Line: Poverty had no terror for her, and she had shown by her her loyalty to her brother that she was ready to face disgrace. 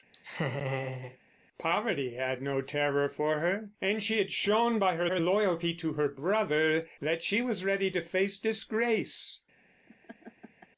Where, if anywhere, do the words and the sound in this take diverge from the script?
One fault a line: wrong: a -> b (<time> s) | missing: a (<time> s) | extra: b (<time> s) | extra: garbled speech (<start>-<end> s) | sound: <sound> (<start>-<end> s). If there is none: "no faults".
sound: laugh (0.1-1.2 s)
sound: laugh (9.9-10.7 s)